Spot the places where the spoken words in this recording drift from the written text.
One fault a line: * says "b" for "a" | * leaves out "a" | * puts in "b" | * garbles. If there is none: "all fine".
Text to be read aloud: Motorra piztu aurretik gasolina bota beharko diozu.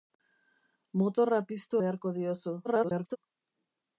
* leaves out "aurretik gasolina bota"
* garbles